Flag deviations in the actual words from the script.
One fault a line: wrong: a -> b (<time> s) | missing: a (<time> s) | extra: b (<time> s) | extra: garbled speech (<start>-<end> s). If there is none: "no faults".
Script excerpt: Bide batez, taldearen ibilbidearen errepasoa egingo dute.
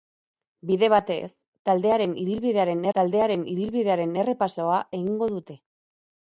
extra: taldearen ibilbidearen (3.0 s)